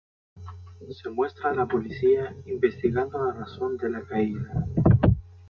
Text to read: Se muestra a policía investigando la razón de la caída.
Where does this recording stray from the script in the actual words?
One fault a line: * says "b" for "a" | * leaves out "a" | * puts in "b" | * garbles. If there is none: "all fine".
* puts in "la"